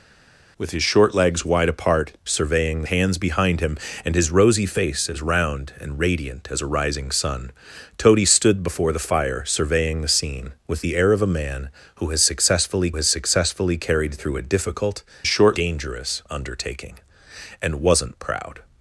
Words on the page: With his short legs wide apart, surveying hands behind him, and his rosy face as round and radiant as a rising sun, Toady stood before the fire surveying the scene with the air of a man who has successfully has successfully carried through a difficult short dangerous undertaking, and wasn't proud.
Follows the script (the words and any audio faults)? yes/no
yes